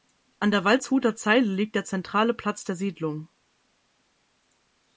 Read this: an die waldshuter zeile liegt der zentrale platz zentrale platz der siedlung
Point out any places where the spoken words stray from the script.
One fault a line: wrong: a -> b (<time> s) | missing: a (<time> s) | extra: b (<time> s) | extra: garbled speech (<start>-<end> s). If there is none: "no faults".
wrong: die -> der (0.5 s)
missing: zentrale platz (2.6 s)